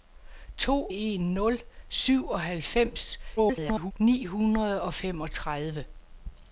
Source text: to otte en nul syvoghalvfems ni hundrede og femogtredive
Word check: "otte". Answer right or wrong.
wrong